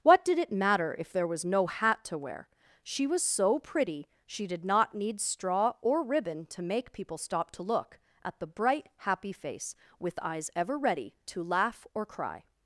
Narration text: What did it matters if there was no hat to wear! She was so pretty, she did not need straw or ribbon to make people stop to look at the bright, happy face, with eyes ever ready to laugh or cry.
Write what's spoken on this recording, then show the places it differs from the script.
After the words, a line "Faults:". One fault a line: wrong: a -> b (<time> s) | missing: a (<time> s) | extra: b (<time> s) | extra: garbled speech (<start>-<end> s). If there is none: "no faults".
What did it matter if there was no hat to wear! She was so pretty, she did not need straw or ribbon to make people stop to look at the bright, happy face, with eyes ever ready to laugh or cry.
Faults:
wrong: matters -> matter (0.5 s)